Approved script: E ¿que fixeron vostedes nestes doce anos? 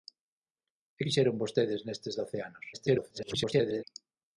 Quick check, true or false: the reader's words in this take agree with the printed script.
false